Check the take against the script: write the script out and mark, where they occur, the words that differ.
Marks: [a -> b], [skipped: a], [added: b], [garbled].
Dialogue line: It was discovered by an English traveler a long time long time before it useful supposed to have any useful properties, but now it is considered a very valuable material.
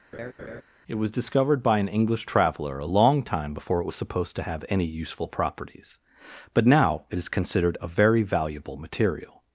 It was discovered by an English traveler a long time [skipped: long time] before it [useful -> was] supposed to have any useful properties, but now it is considered a very valuable material.